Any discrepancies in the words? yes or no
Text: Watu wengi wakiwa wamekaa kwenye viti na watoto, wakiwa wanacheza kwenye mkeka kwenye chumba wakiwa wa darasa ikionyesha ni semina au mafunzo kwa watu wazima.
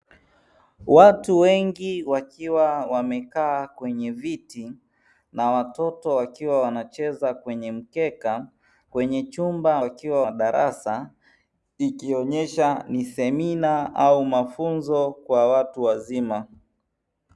no